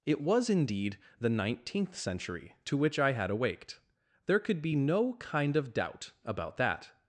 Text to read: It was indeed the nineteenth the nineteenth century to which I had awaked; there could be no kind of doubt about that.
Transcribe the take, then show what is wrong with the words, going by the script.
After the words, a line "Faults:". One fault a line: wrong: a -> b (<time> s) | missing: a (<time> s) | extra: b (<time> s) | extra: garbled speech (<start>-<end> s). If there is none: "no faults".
It was indeed the nineteenth century to which I had awaked; there could be no kind of doubt about that.
Faults:
missing: the nineteenth (1.9 s)